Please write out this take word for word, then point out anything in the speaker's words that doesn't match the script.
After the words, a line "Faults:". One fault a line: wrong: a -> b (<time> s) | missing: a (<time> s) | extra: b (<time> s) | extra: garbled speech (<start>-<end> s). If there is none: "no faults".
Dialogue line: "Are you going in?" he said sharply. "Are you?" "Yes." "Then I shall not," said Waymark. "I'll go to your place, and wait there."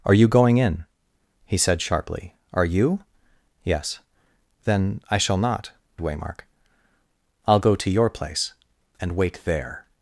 "Are you going in?" he said sharply. "Are you?" "Yes." "Then I shall not," Waymark. "I'll go to your place, and wait there."
Faults:
missing: said (5.7 s)